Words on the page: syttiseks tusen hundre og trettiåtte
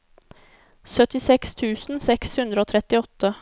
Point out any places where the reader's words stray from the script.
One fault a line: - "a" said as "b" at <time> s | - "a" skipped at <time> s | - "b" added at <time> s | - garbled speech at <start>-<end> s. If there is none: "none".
- "seks" added at 2.1 s